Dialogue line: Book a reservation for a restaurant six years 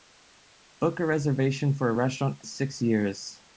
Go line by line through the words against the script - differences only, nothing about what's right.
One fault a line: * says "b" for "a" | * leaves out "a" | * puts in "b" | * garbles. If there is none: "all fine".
all fine